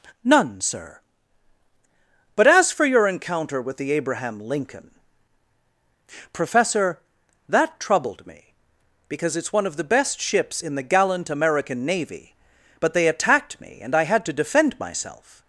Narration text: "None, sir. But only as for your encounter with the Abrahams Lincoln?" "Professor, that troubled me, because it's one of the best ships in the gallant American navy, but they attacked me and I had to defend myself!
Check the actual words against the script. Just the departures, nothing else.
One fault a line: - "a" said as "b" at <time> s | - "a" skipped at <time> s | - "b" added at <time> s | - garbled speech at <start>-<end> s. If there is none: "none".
- "only" skipped at 2.5 s
- "Abrahams" said as "Abraham" at 3.9 s